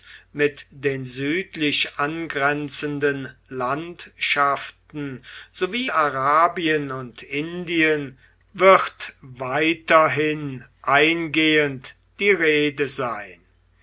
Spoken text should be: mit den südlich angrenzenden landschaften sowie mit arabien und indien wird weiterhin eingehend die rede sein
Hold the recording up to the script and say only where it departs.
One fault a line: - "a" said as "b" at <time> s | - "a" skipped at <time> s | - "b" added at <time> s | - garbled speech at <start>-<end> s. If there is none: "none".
- "mit" skipped at 5.9 s